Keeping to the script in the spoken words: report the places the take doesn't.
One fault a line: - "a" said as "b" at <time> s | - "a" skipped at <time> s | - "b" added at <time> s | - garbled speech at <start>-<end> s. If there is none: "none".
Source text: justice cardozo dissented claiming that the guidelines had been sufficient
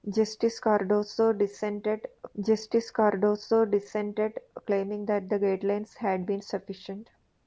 - "justice cardozo dissented" added at 2.4 s